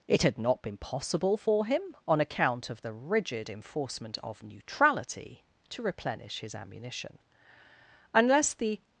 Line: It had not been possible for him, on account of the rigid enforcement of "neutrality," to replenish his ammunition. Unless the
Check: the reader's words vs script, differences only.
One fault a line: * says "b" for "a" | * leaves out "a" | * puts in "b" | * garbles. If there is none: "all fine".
all fine